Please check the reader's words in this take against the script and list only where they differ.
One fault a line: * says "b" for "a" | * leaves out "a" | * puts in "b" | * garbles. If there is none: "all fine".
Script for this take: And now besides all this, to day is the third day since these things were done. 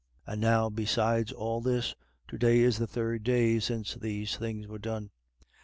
all fine